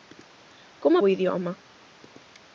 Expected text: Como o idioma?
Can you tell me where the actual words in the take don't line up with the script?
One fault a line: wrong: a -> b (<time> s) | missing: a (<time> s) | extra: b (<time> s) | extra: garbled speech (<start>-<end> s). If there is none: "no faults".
no faults